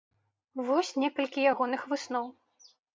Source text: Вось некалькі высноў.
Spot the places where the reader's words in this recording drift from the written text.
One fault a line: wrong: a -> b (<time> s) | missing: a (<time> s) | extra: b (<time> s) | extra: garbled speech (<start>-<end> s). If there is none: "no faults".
extra: ягоных (1.5 s)